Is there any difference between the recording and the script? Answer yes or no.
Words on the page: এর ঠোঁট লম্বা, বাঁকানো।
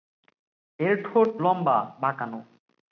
no